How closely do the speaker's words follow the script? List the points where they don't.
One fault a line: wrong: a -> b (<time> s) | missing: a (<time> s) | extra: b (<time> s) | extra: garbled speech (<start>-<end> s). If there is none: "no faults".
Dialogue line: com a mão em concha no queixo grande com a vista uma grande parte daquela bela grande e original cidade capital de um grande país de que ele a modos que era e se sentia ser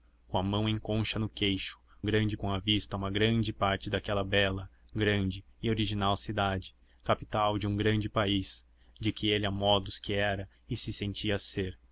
no faults